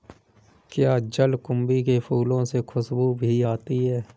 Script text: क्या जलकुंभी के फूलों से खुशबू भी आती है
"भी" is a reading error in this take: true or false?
false